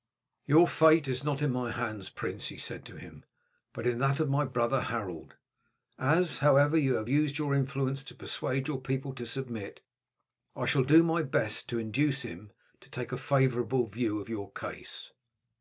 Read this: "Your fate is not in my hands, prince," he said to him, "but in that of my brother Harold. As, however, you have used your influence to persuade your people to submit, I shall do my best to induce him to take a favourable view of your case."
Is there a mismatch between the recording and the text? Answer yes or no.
no